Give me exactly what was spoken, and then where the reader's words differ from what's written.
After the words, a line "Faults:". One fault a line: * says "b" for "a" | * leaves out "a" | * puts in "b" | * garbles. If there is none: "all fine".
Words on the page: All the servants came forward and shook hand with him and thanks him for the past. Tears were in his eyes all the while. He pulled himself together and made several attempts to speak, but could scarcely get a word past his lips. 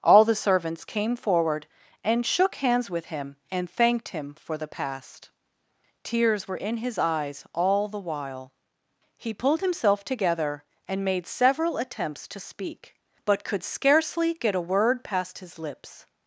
All the servants came forward and shook hands with him and thanked him for the past. Tears were in his eyes all the while. He pulled himself together and made several attempts to speak, but could scarcely get a word past his lips.
Faults:
* says "hands" for "hand"
* says "thanked" for "thanks"